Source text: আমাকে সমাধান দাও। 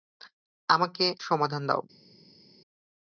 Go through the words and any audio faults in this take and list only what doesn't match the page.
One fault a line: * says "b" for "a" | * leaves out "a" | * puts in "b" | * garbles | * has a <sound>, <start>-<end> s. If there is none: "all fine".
all fine